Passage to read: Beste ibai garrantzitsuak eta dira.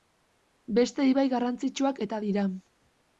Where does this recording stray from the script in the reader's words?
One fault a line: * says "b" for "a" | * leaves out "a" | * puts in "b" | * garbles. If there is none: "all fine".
all fine